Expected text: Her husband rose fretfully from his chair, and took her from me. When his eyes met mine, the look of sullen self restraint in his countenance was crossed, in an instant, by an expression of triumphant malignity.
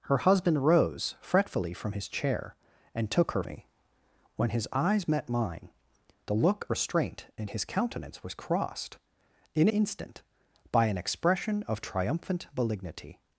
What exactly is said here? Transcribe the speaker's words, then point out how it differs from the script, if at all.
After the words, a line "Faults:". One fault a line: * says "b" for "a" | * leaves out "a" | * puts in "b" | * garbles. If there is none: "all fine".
Her husband rose fretfully from his chair, and took her me. When his eyes met mine, the look restraint in his countenance was crossed, in instant, by an expression of triumphant malignity.
Faults:
* leaves out "from"
* leaves out "of sullen self"
* leaves out "an"